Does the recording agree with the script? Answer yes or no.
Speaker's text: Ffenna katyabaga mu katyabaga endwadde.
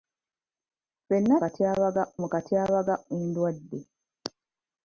yes